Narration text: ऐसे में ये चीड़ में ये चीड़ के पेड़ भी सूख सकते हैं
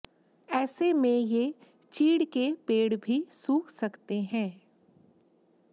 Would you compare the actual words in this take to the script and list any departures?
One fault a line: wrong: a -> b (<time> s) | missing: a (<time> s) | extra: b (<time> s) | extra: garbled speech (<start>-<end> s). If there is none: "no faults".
missing: में ये चीड़ (2.2 s)